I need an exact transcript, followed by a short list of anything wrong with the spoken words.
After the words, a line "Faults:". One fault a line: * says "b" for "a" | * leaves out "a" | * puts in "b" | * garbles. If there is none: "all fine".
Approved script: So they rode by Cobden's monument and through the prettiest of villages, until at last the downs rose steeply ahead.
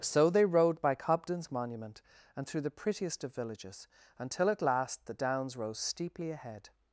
So they rode by Cobden's monument and through the prettiest of villages, until at last the downs rose steeply ahead.
Faults:
all fine